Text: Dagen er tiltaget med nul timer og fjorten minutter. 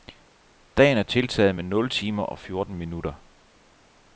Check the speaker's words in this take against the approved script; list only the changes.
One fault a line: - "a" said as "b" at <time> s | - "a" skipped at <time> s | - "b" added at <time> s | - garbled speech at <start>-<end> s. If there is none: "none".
none